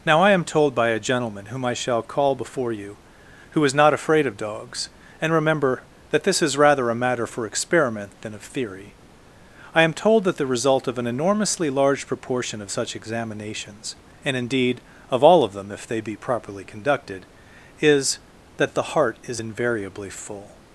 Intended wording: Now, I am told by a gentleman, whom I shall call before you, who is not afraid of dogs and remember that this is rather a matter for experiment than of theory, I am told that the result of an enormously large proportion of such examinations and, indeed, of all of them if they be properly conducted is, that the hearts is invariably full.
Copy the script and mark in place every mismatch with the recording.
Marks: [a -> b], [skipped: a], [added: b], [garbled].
Now, I am told by a gentleman, whom I shall call before you, who is not afraid of dogs and remember that this is rather a matter for experiment than of theory, I am told that the result of an enormously large proportion of such examinations and, indeed, of all of them if they be properly conducted is, that the [hearts -> heart] is invariably full.